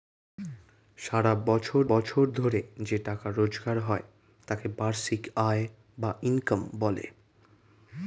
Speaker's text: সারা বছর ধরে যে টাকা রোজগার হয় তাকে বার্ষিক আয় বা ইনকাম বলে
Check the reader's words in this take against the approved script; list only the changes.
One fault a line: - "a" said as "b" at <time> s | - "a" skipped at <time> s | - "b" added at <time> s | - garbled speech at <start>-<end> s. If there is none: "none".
- "বছর" added at 1.9 s